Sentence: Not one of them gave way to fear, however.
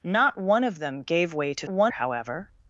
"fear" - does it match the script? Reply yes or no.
no